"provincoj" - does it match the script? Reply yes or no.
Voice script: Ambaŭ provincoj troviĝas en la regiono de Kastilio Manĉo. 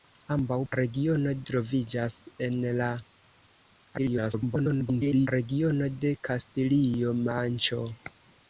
no